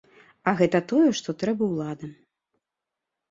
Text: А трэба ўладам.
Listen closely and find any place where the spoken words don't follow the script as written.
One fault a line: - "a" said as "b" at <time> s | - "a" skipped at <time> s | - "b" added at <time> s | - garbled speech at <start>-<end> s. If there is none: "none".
- "гэта тое што" added at 0.6 s